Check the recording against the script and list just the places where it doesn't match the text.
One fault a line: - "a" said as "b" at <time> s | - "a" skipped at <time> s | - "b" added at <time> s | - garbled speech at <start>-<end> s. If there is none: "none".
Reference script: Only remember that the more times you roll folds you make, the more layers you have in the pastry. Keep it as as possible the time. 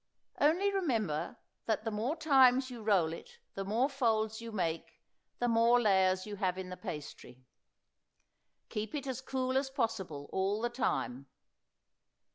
- "it the more" added at 3.1 s
- "cool" added at 9.2 s
- "all" added at 10.3 s